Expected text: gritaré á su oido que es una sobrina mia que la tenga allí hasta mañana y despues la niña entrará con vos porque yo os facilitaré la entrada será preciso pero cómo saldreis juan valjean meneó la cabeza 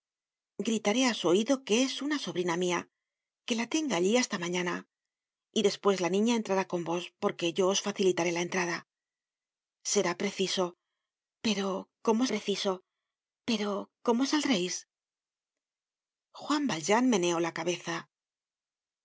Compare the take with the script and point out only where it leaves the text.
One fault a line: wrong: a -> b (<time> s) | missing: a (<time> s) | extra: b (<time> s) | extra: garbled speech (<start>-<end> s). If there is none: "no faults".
extra: preciso pero cómo (12.3 s)